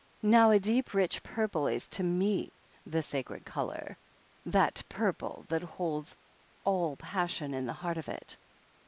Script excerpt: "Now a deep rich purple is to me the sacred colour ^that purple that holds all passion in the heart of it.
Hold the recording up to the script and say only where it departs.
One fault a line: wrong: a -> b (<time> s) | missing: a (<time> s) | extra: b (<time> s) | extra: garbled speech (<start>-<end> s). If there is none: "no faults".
no faults